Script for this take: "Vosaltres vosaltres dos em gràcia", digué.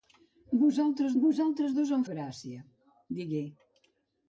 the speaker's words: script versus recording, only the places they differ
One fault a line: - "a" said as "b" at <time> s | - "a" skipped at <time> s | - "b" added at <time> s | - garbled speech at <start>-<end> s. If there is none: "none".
none